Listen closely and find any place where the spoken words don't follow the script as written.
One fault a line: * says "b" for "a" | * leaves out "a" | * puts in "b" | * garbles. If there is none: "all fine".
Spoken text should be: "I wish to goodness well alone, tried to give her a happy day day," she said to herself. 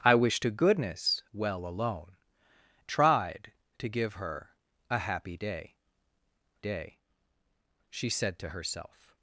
all fine